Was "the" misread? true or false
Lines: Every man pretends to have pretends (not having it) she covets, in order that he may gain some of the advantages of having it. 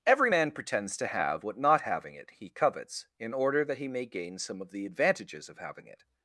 false